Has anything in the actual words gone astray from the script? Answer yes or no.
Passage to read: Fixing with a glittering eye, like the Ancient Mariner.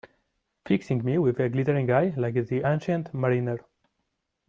yes